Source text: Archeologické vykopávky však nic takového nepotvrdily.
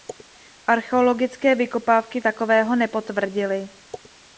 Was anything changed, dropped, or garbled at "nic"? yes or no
yes